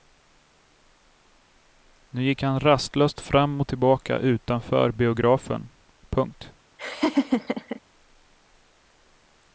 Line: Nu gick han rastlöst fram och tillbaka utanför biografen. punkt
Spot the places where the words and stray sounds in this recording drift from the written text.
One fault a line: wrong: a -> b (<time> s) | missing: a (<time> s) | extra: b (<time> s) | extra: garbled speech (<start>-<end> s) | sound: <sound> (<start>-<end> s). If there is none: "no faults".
sound: laugh (6.8-7.8 s)